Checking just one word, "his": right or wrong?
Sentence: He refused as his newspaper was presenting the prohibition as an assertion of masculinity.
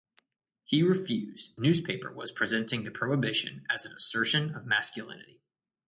wrong